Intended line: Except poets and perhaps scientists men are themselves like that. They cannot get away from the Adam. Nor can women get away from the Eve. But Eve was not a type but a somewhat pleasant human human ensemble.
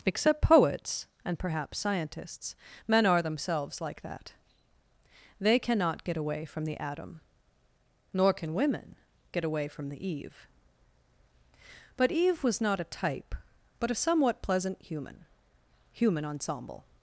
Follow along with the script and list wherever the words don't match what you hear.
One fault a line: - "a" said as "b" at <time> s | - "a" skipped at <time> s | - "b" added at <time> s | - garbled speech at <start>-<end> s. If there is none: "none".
none